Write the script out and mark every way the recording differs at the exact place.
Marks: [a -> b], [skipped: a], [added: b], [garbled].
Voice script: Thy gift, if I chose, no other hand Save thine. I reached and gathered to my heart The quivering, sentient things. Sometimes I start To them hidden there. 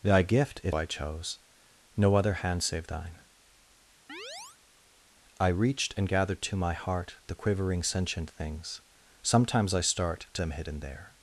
Thy gift, if I chose, no other hand Save thine. I reached and gathered to my heart The quivering, sentient things. Sometimes I start To them hidden there.